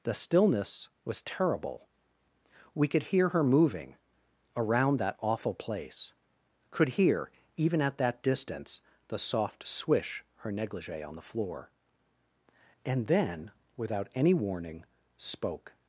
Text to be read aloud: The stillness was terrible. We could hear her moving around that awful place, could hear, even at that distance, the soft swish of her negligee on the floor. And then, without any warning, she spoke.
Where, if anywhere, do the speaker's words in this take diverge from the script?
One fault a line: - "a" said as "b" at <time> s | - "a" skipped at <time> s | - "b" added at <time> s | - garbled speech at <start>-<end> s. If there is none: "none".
- "of" skipped at 10.2 s
- "she" skipped at 14.8 s